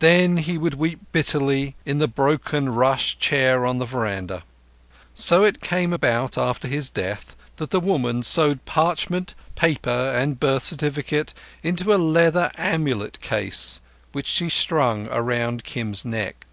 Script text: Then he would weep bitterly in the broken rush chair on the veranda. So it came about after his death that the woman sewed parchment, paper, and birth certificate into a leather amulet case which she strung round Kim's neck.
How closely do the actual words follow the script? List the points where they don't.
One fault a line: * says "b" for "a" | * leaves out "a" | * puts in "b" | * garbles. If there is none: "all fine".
all fine